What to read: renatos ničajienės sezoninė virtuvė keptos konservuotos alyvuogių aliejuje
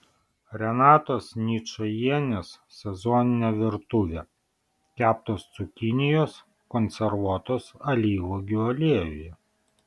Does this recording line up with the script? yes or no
no